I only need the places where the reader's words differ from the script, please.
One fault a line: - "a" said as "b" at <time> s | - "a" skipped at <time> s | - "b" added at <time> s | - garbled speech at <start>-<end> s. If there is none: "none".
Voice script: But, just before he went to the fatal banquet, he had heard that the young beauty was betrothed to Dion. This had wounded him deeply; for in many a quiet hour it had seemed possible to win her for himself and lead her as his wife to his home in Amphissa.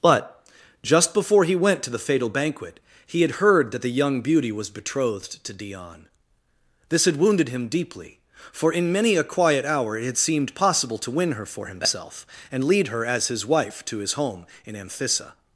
none